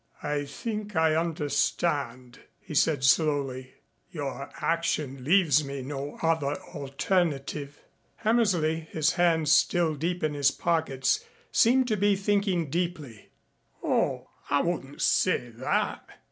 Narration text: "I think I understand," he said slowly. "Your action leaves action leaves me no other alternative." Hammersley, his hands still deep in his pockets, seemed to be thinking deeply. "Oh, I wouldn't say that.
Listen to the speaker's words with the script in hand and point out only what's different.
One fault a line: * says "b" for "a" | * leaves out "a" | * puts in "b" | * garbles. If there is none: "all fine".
* leaves out "action leaves"